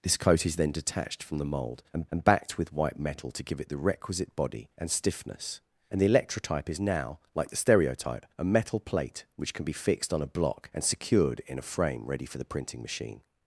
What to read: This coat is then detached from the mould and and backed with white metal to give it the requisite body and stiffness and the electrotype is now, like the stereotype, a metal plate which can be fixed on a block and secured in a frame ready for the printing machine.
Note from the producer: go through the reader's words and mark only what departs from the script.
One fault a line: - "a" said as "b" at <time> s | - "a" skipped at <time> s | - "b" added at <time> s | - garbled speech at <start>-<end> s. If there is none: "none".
none